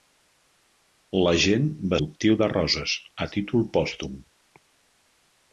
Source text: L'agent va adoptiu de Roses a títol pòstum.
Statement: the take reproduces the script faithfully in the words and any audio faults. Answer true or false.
true